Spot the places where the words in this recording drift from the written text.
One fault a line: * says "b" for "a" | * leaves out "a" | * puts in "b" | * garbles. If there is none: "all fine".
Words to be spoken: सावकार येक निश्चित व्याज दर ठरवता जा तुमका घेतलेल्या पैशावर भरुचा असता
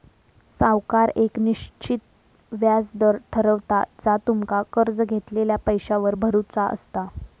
* puts in "कर्ज"